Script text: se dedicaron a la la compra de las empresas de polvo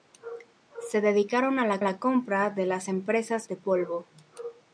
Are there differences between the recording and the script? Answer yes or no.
no